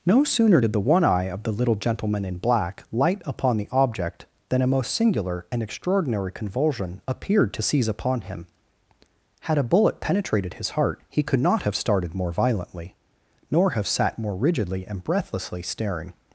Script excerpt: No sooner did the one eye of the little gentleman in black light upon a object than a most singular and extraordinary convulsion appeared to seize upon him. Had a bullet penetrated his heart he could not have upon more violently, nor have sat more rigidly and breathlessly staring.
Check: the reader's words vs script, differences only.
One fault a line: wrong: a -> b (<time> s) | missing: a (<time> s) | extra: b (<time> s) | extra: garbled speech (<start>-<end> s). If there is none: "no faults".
wrong: a -> the (3.6 s)
wrong: upon -> started (11.8 s)